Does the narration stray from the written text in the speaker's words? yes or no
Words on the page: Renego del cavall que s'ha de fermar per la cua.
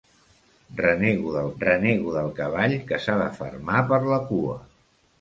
yes